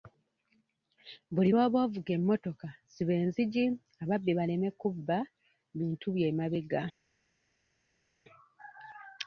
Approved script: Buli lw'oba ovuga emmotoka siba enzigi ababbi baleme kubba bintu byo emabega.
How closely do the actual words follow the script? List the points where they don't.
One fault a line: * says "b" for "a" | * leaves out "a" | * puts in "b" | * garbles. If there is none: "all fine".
all fine